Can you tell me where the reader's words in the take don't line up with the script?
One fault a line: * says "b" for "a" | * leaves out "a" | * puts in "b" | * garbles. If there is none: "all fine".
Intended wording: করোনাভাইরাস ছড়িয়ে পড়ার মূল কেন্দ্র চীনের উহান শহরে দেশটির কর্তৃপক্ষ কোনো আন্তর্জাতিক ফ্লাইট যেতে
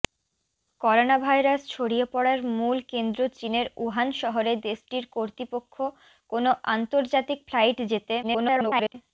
* garbles